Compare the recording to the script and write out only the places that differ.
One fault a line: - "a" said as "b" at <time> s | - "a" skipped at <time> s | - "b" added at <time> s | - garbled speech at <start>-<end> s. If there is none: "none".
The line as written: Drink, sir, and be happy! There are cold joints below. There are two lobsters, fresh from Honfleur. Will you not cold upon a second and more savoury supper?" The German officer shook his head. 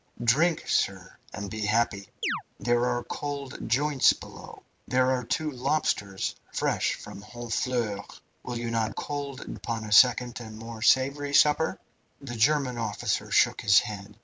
none